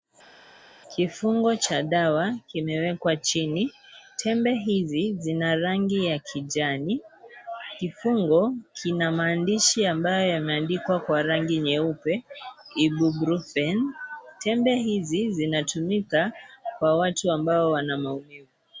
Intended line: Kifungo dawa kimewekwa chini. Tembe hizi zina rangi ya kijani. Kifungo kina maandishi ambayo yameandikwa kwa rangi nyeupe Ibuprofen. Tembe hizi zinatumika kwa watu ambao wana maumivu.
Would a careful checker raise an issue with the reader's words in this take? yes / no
yes